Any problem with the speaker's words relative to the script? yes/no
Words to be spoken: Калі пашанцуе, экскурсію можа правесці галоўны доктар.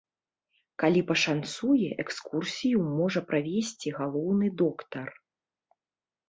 no